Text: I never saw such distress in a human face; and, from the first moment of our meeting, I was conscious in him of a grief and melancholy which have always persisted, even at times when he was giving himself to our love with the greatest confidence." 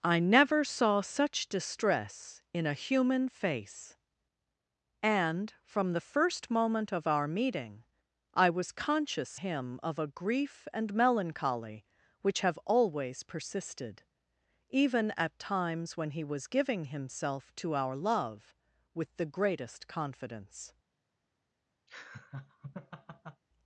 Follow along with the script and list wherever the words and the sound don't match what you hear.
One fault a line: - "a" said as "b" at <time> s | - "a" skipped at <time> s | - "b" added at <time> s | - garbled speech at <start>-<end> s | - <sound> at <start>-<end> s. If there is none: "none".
- "in" skipped at 9.4 s
- laugh at 21.9-23.4 s